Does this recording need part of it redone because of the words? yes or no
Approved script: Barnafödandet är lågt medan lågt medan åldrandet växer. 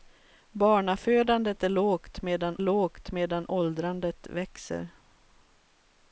no